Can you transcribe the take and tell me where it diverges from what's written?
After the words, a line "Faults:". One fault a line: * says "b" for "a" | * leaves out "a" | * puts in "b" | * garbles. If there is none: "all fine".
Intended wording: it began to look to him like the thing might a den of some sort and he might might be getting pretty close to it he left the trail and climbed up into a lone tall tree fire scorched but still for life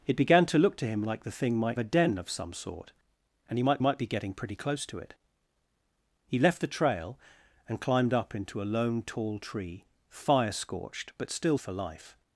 it began to look to him like the thing might a den of some sort and he might might be getting pretty close to it he left the trail and climbed up into a lone tall tree fire scorched but still for life
Faults:
all fine